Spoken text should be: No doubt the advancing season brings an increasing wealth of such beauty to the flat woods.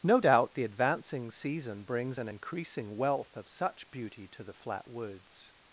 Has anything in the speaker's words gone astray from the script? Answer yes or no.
no